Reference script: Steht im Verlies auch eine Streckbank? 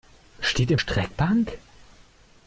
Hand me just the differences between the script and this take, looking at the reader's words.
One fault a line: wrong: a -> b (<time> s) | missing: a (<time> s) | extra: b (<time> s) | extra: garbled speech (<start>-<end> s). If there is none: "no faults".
missing: Verlies auch eine (0.8 s)